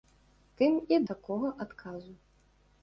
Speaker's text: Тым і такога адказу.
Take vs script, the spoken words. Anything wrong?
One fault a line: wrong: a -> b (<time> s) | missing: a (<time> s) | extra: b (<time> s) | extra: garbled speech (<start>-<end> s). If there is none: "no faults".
no faults